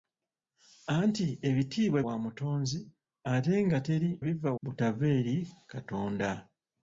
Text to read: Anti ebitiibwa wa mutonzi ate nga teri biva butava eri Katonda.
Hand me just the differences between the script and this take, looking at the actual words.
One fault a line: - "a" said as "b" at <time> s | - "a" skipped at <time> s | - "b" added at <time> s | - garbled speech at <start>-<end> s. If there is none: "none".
none